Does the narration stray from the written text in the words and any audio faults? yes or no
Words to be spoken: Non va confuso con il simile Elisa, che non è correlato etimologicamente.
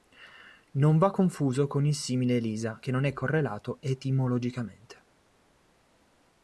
no